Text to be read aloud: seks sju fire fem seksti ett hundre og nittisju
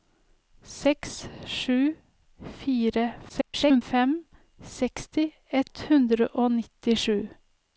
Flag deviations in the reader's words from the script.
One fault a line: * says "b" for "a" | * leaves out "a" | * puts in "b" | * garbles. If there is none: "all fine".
* garbles